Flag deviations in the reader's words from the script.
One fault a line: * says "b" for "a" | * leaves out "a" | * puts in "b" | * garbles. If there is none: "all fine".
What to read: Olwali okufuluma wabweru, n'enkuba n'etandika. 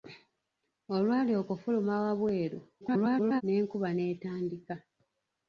* garbles